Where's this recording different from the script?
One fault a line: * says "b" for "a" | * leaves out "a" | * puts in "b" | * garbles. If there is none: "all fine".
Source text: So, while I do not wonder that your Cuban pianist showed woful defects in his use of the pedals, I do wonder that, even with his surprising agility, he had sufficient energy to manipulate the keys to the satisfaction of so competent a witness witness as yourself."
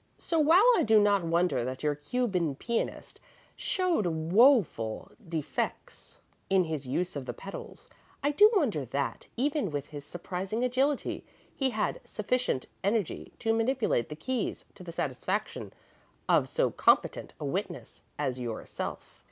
* leaves out "witness"